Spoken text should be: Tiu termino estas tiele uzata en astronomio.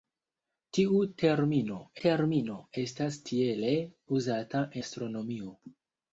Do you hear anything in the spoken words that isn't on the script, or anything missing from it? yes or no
yes